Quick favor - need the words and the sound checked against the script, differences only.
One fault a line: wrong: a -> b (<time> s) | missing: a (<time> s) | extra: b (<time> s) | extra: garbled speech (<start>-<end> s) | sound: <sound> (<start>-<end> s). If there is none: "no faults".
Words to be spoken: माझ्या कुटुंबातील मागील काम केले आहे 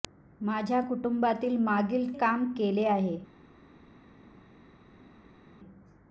no faults